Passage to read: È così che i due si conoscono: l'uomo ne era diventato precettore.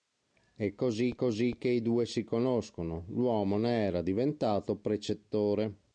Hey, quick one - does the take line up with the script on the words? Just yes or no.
no